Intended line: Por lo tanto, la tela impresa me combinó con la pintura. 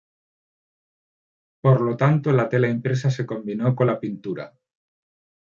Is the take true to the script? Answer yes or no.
no